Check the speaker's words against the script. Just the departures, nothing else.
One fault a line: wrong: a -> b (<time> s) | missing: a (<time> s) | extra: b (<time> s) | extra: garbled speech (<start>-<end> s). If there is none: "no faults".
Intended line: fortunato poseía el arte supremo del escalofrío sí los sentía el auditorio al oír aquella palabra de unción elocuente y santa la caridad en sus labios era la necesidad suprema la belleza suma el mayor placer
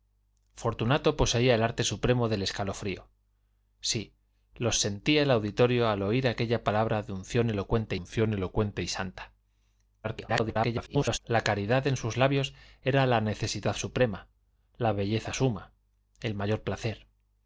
extra: unción elocuente (7.9 s)
extra: garbled speech (10.0-11.2 s)